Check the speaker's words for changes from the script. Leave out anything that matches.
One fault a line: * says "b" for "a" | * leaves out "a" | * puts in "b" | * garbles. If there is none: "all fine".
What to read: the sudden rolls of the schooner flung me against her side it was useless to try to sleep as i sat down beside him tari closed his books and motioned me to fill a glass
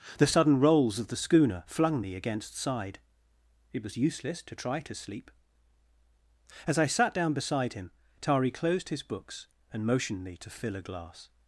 * leaves out "her"